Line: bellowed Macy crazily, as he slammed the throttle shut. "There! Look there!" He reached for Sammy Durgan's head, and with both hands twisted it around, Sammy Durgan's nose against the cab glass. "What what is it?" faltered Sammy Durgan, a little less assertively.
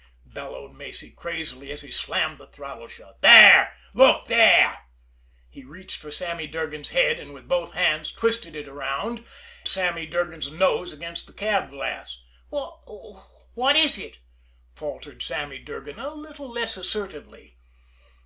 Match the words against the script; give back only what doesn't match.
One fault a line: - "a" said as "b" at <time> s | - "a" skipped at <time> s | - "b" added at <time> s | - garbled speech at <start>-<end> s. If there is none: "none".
none